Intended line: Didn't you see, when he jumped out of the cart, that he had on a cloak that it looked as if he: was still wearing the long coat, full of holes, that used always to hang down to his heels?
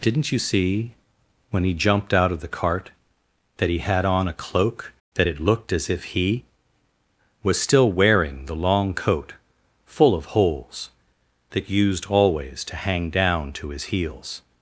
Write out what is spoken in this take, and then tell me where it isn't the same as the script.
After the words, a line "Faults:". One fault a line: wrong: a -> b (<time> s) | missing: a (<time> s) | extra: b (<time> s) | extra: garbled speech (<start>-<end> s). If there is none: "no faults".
Didn't you see, when he jumped out of the cart, that he had on a cloak that it looked as if he: was still wearing the long coat, full of holes, that used always to hang down to his heels?
Faults:
no faults